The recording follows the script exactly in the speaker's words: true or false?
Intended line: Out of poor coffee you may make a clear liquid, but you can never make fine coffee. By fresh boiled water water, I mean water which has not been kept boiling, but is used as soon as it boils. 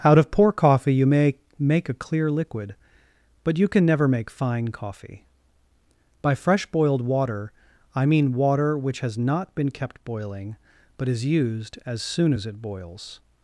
false